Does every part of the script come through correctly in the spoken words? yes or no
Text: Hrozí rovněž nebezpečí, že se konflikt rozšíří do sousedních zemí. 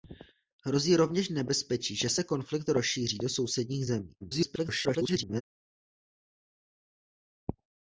no